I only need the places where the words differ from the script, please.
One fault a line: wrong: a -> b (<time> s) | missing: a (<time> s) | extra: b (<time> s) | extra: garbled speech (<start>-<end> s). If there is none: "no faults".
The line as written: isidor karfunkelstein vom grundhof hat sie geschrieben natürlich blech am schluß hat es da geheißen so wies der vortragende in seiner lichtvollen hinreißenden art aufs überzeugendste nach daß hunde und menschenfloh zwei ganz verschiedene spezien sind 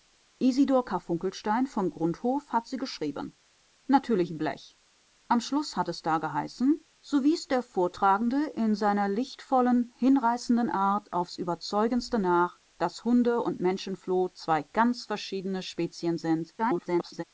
extra: garbled speech (16.6-17.2 s)